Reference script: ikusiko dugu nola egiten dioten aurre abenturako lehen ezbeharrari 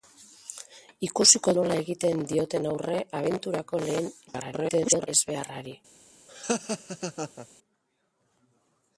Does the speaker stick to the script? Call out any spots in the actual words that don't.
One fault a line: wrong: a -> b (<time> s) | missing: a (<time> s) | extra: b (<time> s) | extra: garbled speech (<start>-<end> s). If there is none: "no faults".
missing: dugu (1.5 s)
extra: garbled speech (4.3-5.1 s)